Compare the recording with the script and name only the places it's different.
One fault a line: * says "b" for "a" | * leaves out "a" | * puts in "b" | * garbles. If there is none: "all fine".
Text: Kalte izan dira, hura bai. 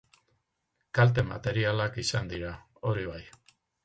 * puts in "materialak"
* says "hori" for "hura"